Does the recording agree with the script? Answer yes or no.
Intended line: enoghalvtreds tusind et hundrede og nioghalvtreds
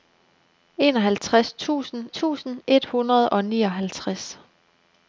no